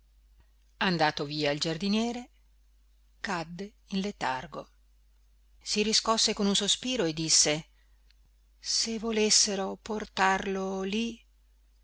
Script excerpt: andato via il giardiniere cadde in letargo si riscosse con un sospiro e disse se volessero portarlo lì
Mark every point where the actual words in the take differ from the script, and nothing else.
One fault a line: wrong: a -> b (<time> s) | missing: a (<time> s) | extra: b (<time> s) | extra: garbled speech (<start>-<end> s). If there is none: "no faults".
no faults